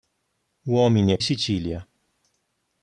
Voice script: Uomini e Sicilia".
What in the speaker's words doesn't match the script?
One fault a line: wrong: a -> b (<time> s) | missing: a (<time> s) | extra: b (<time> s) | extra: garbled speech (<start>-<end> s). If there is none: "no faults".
no faults